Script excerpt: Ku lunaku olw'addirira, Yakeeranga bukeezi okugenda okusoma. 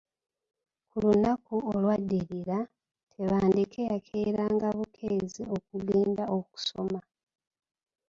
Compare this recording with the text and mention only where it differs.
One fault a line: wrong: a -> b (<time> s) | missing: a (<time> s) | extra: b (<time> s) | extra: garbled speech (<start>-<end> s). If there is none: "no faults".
extra: Tebandeke (3.1 s)